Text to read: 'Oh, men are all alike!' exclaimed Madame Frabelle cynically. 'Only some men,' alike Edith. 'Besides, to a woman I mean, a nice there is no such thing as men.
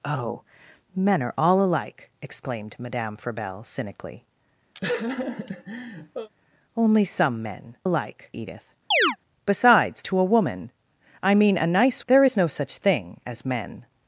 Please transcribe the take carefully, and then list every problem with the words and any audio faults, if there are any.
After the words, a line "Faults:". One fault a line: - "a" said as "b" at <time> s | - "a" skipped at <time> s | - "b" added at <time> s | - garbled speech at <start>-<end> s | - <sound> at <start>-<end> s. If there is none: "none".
'Oh, men are all alike!' exclaimed Madame Frabelle cynically. 'Only some men,' alike Edith. 'Besides, to a woman I mean, a nice there is no such thing as men.
Faults:
- laugh at 4.7-6.3 s
- chirp at 8.9-9.2 s